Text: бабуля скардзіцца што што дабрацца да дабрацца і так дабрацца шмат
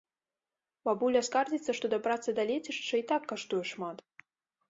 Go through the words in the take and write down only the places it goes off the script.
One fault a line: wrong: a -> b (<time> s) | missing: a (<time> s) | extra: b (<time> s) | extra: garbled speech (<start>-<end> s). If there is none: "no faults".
missing: што (1.9 s)
wrong: дабрацца -> лецішча (2.5 s)
wrong: дабрацца -> каштуе (3.3 s)